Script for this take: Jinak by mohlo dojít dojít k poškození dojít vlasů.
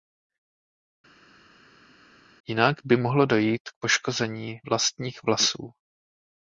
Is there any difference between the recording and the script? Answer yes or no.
yes